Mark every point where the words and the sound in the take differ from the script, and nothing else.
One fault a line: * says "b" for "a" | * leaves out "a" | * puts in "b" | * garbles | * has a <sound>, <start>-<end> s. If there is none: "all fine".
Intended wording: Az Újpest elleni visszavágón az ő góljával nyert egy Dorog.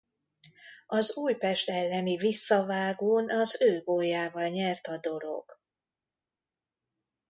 * says "a" for "egy"